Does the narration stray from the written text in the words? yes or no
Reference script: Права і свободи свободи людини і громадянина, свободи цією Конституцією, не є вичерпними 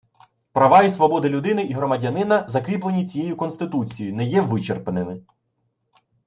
yes